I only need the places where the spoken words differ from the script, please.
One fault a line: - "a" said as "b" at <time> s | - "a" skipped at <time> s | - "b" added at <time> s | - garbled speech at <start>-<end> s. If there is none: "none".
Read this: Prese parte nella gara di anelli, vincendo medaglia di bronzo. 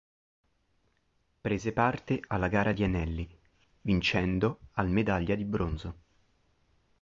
- "nella" said as "alla" at 2.3 s
- "al" added at 4.7 s